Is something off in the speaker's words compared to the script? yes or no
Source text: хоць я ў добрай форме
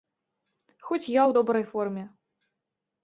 no